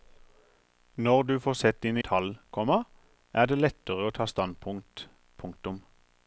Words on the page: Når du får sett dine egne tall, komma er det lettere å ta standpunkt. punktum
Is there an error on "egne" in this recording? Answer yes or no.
yes